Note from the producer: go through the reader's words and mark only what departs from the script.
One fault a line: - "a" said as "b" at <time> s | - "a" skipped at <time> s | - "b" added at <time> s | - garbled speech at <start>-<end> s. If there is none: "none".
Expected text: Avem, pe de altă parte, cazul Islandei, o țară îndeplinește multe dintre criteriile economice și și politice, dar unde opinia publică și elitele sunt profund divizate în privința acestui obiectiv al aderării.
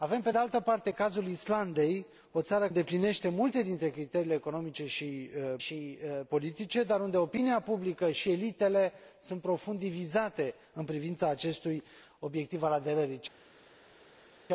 none